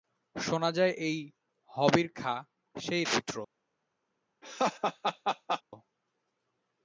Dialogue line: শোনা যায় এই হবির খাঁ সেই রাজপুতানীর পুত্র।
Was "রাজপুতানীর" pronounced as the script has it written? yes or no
no